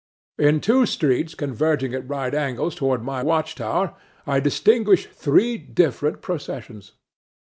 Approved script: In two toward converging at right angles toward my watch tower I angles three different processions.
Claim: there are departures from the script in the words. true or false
true